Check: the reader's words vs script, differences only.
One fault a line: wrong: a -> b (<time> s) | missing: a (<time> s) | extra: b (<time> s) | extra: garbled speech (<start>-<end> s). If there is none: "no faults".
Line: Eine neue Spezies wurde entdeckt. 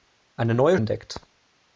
missing: Spezies wurde (0.8 s)